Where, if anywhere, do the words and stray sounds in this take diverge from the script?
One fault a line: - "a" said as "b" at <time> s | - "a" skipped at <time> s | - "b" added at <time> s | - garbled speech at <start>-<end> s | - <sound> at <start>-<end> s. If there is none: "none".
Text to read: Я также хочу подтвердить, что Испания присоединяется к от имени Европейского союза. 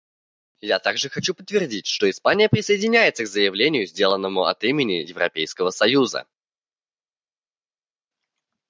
- "заявлению сделанному" added at 3.3 s